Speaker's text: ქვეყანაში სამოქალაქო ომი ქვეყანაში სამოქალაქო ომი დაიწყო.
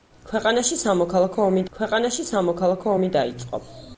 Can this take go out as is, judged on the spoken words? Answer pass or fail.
pass